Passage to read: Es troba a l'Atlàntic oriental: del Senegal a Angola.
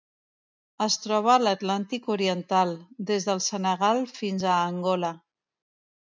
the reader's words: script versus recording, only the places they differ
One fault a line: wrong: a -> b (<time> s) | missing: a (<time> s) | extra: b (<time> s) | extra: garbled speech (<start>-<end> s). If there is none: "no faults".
extra: des (3.1 s)
extra: fins (4.2 s)